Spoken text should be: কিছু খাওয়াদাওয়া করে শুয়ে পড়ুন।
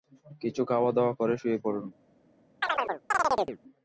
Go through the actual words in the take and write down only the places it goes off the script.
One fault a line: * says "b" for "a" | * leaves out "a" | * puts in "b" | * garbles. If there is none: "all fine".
all fine